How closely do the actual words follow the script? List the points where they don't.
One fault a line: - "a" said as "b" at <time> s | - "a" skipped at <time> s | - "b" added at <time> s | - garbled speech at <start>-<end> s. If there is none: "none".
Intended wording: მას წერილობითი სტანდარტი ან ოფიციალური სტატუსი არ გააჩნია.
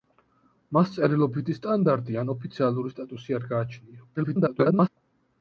- garbled speech at 4.2-4.9 s